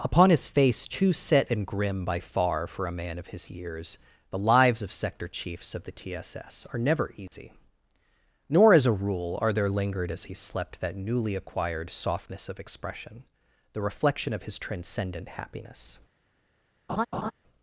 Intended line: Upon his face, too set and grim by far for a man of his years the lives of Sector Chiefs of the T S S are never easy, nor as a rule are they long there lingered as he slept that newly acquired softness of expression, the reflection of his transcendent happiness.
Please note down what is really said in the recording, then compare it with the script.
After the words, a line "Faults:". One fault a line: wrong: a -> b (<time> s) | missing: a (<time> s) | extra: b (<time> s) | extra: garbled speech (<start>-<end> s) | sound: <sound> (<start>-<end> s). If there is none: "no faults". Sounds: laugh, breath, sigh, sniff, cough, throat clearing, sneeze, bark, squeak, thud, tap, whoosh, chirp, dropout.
Upon his face, too set and grim by far for a man of his years the lives of Sector Chiefs of the T S S are never easy, nor as a rule are there lingered as he slept that newly acquired softness of expression, the reflection of his transcendent happiness.
Faults:
sound: dropout (7.3-7.3 s)
missing: they long (9.5 s)
sound: laugh (16.9-17.3 s)